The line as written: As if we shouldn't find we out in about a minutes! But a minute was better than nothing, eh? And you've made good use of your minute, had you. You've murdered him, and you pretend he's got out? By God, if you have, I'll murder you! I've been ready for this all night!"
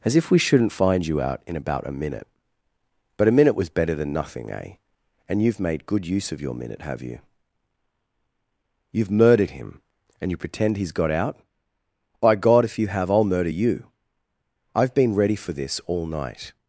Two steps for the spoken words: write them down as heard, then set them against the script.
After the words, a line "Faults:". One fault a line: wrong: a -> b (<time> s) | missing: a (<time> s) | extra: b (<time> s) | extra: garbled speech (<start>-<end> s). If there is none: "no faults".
As if we shouldn't find you out in about a minute! But a minute was better than nothing, eh? And you've made good use of your minute, have you. You've murdered him, and you pretend he's got out? By God, if you have, I'll murder you! I've been ready for this all night!"
Faults:
wrong: we -> you (1.1 s)
wrong: minutes -> minute (1.9 s)
wrong: had -> have (6.8 s)